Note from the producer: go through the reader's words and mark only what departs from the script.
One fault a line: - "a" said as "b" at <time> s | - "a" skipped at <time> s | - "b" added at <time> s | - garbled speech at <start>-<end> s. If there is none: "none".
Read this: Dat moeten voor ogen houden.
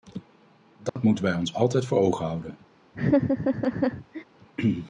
- "wij ons altijd" added at 1.2 s